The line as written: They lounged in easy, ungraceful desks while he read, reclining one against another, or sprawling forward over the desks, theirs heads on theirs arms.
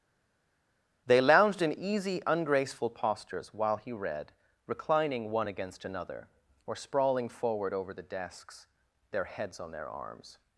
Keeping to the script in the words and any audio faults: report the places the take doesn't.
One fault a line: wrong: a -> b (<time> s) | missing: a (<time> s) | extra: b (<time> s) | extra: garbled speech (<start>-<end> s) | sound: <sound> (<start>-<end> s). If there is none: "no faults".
wrong: desks -> postures (2.9 s)
wrong: theirs -> their (9.1 s)
wrong: theirs -> their (9.7 s)